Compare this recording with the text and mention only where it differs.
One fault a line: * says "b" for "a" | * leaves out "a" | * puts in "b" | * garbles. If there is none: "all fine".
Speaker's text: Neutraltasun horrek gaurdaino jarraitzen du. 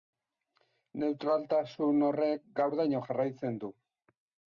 all fine